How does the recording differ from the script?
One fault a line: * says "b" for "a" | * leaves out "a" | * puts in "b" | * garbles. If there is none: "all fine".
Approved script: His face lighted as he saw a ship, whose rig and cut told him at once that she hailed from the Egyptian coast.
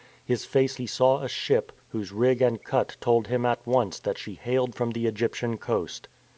* leaves out "lighted as"